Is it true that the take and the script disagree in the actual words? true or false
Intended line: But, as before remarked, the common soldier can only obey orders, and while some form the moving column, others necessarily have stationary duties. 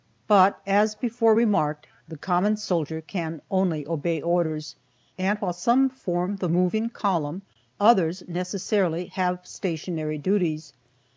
false